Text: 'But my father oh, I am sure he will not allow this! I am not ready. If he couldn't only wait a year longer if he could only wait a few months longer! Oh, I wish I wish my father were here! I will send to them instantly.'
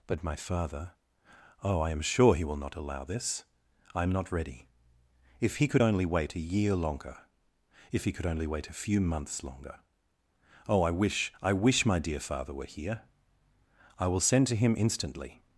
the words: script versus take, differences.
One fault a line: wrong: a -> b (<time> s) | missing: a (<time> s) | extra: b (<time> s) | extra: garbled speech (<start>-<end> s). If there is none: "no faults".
wrong: couldn't -> could (5.7 s)
extra: dear (12.0 s)
wrong: them -> him (14.5 s)